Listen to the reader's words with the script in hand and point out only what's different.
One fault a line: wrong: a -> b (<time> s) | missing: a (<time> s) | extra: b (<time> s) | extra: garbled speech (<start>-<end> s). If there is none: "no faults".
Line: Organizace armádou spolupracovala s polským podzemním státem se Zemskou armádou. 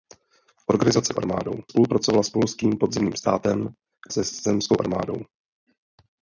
no faults